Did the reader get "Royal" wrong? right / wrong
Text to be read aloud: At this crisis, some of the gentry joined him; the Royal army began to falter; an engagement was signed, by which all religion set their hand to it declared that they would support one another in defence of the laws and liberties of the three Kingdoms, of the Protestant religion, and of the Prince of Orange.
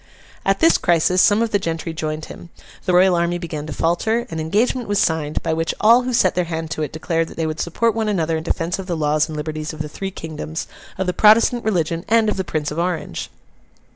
right